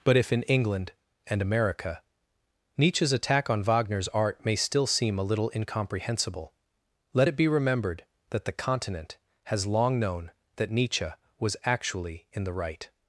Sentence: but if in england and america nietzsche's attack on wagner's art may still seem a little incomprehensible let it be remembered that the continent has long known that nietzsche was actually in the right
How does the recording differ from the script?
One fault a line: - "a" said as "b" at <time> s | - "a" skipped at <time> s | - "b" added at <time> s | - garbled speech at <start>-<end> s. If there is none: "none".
none